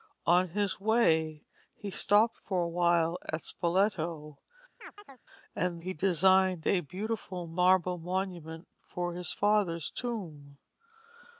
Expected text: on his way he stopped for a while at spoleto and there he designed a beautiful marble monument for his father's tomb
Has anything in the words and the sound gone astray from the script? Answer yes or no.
yes